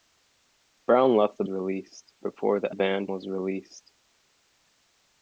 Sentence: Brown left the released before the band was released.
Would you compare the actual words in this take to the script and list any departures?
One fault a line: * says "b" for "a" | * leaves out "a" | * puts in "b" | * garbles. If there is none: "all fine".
all fine